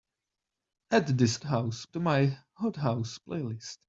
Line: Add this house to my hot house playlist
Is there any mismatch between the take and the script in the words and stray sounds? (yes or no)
no